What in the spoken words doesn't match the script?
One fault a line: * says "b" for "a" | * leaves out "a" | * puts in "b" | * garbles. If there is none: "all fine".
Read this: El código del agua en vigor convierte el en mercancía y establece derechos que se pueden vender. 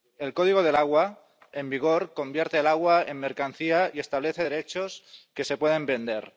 * puts in "agua"